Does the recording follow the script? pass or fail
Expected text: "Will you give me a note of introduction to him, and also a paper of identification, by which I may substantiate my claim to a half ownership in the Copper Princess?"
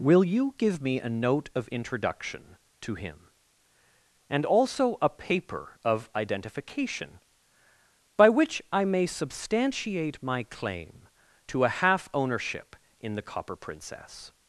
pass